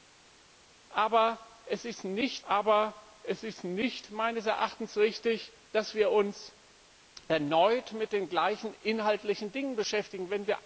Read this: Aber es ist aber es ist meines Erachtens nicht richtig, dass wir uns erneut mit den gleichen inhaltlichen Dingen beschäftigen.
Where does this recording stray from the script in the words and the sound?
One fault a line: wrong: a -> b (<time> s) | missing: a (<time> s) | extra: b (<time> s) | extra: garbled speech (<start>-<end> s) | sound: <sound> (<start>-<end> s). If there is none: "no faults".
no faults